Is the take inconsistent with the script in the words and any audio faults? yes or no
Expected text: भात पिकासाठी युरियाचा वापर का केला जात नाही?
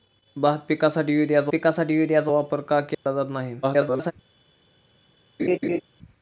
yes